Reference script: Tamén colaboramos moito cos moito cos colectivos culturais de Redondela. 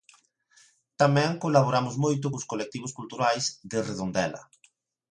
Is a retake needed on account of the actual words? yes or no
yes